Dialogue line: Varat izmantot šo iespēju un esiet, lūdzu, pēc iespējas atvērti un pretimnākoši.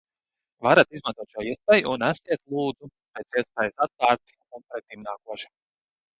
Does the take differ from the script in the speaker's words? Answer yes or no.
no